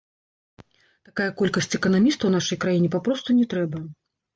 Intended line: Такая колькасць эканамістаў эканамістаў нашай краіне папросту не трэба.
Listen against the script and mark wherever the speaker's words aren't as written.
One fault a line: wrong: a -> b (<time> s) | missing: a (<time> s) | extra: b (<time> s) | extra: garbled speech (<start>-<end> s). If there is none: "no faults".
missing: эканамістаў (2.3 s)